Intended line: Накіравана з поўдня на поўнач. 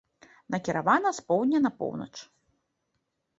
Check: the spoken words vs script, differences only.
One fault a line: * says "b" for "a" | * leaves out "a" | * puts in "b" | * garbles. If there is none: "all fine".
all fine